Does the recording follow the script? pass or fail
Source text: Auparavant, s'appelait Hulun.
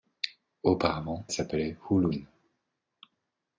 pass